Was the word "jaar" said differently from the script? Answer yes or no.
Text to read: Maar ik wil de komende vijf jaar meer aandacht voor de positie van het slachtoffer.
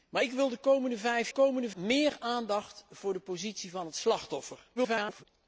yes